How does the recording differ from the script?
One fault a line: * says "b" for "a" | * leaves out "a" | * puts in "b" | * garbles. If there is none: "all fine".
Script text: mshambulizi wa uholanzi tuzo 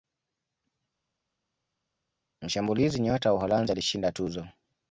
* puts in "nyota"
* puts in "alishinda"